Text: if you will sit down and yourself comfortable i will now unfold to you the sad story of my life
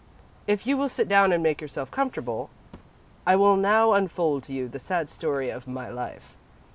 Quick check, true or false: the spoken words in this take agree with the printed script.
false